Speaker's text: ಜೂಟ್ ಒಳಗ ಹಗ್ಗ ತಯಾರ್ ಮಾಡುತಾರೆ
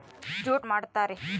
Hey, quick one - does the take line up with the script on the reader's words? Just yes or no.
no